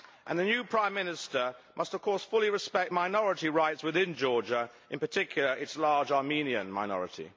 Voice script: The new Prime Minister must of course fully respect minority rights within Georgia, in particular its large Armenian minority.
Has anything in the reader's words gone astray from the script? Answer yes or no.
no